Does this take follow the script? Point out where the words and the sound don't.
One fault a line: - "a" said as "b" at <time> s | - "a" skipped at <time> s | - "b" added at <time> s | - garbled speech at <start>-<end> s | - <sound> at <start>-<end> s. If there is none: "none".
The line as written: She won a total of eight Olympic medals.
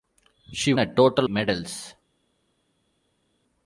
- "won" skipped at 0.7 s
- "of eight Olympic" skipped at 1.3 s